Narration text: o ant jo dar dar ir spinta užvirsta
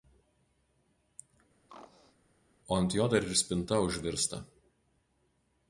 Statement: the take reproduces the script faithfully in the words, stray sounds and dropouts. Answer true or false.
false